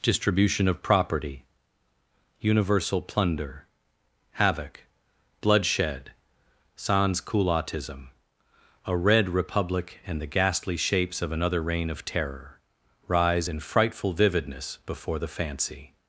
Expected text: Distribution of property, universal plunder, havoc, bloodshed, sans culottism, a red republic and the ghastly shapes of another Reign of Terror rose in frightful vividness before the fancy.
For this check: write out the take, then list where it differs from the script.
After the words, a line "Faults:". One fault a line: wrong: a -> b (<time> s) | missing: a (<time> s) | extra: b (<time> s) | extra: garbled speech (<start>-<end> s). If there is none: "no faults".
Distribution of property, universal plunder, havoc, bloodshed, sans culottism, a red republic and the ghastly shapes of another Reign of Terror rise in frightful vividness before the fancy.
Faults:
wrong: rose -> rise (13.1 s)